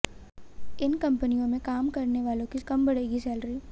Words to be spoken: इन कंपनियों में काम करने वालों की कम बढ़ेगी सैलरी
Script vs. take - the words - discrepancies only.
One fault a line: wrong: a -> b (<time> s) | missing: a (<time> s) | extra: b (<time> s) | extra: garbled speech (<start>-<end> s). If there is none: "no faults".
no faults